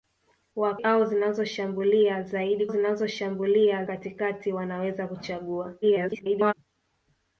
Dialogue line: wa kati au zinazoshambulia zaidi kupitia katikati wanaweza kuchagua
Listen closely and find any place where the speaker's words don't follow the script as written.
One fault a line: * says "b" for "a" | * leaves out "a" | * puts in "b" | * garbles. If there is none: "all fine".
* leaves out "kati"
* says "zinazoshambulia" for "kupitia"
* garbles